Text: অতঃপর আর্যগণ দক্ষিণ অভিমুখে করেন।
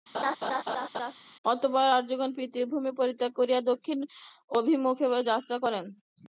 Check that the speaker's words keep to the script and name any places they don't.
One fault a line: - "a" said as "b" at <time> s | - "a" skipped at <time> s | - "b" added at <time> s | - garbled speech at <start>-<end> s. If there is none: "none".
- "পিতৃভূমি পরিত্যাগ করিয়া" added at 2.4 s
- "যাত্রা" added at 5.3 s